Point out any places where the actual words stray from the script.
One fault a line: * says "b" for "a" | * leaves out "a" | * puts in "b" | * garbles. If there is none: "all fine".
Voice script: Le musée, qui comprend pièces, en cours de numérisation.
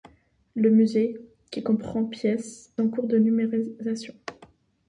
all fine